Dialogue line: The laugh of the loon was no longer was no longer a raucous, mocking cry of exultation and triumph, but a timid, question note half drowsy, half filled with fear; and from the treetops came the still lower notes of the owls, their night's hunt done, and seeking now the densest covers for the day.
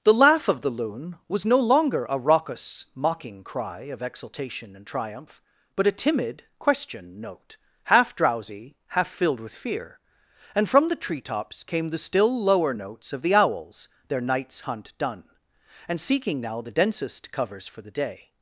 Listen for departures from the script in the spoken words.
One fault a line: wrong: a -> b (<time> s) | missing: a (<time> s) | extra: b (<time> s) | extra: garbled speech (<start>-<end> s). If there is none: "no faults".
missing: was no longer (2.1 s)